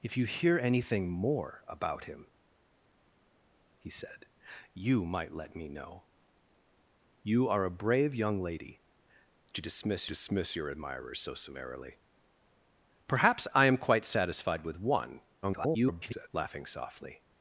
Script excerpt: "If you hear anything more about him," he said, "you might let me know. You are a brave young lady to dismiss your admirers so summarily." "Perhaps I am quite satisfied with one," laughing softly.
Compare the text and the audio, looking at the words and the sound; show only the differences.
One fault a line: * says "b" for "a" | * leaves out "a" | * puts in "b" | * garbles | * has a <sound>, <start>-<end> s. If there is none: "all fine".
* puts in "dismiss"
* garbles